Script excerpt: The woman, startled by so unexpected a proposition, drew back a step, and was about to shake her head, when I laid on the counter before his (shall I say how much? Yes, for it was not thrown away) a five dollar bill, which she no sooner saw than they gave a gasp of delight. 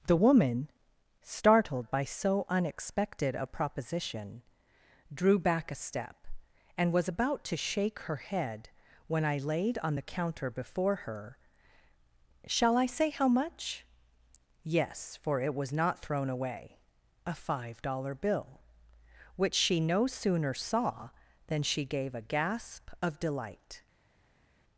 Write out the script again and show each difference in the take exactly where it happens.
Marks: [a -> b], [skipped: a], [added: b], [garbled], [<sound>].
The woman, startled by so unexpected a proposition, drew back a step, and was about to shake her head, when I laid on the counter before [his -> her] (shall I say how much? Yes, for it was not thrown away) a five dollar bill, which she no sooner saw than [they -> she] gave a gasp of delight.